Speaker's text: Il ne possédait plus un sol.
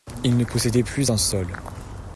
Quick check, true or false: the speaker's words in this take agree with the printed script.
true